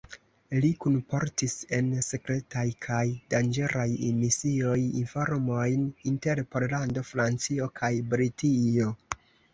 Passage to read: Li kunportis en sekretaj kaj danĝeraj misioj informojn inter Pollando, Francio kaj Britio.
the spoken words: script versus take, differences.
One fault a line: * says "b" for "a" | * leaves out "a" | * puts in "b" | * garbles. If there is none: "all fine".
all fine